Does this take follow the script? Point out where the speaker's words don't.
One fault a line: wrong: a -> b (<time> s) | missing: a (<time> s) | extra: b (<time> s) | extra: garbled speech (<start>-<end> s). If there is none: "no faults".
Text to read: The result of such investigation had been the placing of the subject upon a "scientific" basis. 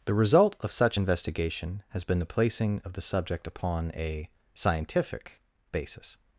wrong: had -> has (1.9 s)